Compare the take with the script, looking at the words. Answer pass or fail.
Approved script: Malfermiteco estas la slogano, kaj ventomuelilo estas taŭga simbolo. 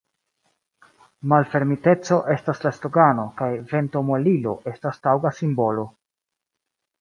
pass